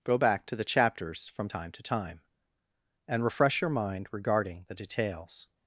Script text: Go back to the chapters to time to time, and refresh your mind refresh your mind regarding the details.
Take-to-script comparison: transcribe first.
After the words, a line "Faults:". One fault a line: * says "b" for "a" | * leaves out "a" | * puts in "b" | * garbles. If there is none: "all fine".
Go back to the chapters from time to time, and refresh your mind regarding the details.
Faults:
* says "from" for "to"
* leaves out "refresh your mind"